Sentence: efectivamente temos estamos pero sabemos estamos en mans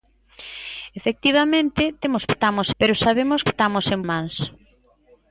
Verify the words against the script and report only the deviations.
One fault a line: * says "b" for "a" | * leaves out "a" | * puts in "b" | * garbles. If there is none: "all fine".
all fine